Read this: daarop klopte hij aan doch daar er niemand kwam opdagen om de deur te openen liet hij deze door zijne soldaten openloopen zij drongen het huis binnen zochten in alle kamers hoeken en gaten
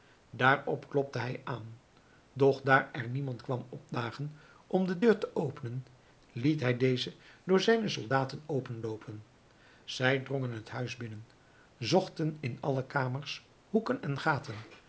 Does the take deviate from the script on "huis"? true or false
false